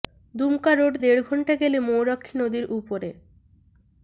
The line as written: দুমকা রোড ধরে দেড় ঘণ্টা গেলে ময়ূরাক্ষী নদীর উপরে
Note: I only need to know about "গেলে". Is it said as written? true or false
true